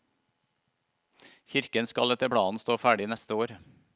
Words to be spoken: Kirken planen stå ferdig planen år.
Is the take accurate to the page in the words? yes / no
no